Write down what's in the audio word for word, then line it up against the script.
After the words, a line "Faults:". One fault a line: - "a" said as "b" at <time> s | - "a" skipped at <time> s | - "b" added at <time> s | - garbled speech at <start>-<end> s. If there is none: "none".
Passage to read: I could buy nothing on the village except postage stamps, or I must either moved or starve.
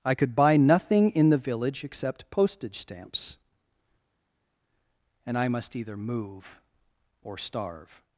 I could buy nothing in the village except postage stamps, and I must either move or starve.
Faults:
- "on" said as "in" at 1.1 s
- "or" said as "and" at 5.3 s
- "moved" said as "move" at 6.0 s